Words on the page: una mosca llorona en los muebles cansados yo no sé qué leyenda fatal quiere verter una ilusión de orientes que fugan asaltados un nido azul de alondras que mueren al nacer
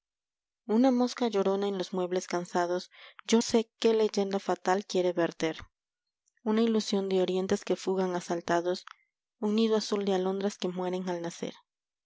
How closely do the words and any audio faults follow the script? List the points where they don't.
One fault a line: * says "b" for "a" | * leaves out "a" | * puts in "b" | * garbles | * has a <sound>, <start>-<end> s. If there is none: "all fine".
* leaves out "no"